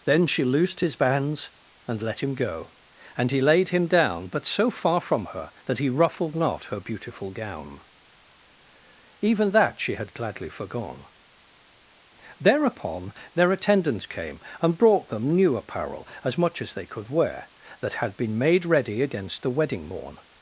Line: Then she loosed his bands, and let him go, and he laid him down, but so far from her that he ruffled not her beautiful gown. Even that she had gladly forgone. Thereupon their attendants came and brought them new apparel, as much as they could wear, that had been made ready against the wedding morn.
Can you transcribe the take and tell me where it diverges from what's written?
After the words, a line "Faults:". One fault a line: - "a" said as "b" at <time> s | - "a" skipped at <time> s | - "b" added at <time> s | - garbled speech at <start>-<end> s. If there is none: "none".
Then she loosed his bands, and let him go, and he laid him down, but so far from her that he ruffled not her beautiful gown. Even that she had gladly forgone. Thereupon their attendants came and brought them new apparel, as much as they could wear, that had been made ready against the wedding morn.
Faults:
none